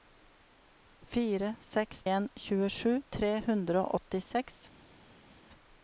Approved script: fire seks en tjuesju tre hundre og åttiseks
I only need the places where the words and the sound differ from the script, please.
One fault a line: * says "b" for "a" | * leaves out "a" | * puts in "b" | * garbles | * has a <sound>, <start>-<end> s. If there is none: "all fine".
all fine